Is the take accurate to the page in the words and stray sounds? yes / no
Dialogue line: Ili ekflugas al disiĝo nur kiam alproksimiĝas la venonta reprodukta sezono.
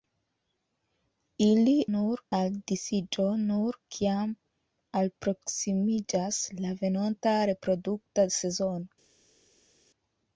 no